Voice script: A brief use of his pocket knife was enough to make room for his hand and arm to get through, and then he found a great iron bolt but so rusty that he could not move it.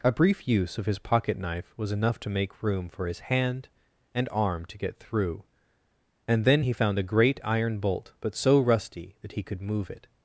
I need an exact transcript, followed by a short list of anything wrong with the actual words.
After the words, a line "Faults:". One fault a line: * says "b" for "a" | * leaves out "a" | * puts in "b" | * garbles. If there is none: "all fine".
A brief use of his pocket knife was enough to make room for his hand and arm to get through, and then he found a great iron bolt but so rusty that he could move it.
Faults:
* leaves out "not"